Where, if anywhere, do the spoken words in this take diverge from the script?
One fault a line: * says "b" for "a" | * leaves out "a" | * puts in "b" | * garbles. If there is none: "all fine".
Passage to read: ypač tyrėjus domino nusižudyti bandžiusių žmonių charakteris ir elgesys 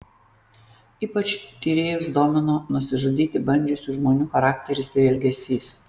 all fine